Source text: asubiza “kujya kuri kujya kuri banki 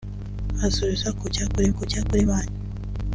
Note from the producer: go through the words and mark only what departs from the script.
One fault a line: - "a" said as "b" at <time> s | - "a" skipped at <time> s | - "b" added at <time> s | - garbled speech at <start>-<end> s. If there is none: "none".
none